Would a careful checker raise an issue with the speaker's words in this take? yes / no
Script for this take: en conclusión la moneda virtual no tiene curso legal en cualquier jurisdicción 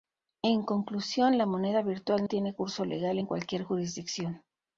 yes